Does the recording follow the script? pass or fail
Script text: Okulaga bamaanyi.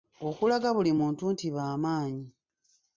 fail